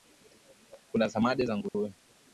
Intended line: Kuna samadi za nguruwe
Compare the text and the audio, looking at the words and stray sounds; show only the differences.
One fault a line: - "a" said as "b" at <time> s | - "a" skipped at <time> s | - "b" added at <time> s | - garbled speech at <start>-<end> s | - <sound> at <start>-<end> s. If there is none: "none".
- dropout at 1.7-1.7 s